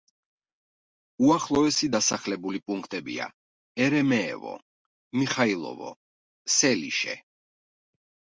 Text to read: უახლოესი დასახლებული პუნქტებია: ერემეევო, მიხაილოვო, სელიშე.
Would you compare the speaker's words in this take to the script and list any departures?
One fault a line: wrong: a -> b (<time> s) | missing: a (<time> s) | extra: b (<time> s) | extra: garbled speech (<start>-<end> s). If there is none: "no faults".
no faults